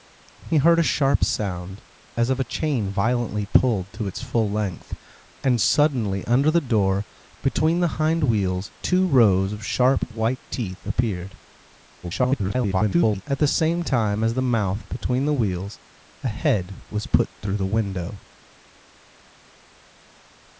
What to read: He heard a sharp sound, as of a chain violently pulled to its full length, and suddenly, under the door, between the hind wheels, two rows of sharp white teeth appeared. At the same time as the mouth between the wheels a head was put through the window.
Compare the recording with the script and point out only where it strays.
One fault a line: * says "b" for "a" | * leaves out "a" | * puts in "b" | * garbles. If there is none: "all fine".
* garbles